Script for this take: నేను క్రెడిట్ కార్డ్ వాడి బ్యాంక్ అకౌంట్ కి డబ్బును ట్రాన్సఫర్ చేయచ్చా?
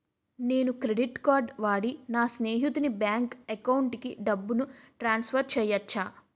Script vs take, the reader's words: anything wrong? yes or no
yes